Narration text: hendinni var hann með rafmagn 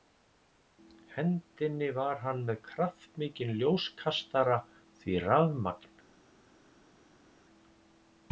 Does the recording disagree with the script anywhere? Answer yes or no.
yes